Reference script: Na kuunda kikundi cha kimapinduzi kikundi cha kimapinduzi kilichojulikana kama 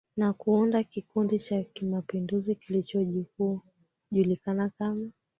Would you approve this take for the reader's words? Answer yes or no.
no